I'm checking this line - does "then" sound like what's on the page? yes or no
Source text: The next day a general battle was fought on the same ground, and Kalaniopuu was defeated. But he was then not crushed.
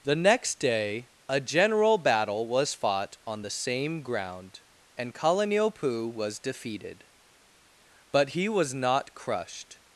no